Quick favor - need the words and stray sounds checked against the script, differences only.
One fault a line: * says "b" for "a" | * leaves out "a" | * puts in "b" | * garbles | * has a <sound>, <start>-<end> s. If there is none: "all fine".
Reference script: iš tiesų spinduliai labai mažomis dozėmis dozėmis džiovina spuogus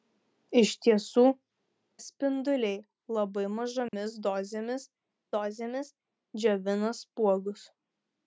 * has a dropout, 3.9-3.9 s